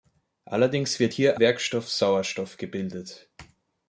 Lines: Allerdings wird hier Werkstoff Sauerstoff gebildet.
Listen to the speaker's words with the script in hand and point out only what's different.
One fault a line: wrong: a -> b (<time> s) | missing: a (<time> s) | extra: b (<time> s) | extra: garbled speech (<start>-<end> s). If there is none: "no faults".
no faults